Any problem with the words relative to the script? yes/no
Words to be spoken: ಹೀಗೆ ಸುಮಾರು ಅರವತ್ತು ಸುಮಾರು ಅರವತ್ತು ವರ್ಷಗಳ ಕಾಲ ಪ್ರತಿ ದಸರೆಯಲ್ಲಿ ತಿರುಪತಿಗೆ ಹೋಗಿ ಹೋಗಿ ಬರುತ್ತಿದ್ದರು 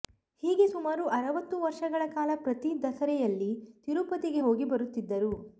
yes